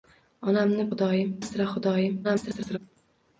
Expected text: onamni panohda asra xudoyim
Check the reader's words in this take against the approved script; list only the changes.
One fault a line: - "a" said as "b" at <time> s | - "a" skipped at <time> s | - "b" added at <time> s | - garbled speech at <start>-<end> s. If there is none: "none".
- "panohda" said as "xudoyim" at 0.9 s
- garbled speech at 2.2-2.8 s